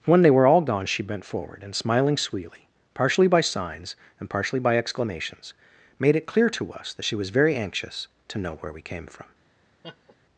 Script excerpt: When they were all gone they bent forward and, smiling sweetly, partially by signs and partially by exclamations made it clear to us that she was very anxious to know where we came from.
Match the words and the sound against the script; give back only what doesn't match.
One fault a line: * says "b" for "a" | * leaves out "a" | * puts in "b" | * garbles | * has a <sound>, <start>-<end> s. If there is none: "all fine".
* says "she" for "they"
* has a laugh, 9.8-10.2 s